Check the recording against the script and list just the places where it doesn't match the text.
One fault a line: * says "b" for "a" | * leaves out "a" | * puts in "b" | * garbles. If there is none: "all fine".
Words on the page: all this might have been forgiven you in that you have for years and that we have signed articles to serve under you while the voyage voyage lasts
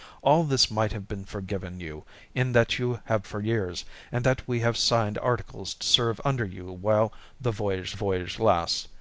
all fine